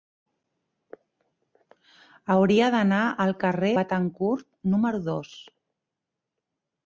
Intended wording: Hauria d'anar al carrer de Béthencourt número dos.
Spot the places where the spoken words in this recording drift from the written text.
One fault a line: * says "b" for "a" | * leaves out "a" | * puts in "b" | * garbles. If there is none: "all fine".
* leaves out "de"